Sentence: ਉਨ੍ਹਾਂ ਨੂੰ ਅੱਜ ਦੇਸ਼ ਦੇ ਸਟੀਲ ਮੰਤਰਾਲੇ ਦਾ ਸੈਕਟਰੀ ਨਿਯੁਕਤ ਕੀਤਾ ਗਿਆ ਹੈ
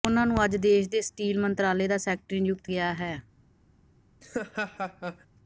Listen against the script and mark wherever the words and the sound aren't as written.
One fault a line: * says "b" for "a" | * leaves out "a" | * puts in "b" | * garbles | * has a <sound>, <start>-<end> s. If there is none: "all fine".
* leaves out "ਕੀਤਾ"
* has a laugh, 4.2-5.3 s